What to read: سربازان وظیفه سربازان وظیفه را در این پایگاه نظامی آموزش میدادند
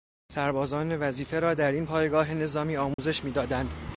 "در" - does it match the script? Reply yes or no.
yes